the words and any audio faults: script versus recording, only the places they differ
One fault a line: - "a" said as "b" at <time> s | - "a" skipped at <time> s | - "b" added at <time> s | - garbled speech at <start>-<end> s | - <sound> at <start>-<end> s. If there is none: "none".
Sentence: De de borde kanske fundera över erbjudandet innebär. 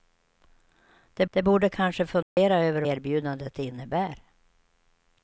- dropout at 2.2-2.4 s